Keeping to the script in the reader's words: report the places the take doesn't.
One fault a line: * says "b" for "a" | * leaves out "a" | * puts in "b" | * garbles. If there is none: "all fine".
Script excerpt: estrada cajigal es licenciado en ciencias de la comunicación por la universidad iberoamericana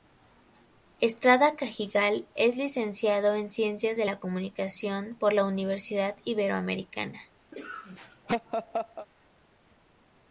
all fine